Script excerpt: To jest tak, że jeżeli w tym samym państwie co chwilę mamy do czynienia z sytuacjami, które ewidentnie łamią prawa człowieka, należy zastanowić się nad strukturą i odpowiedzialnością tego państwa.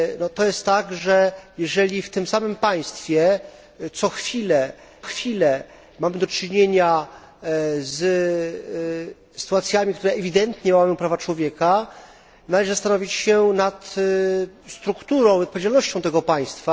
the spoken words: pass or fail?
fail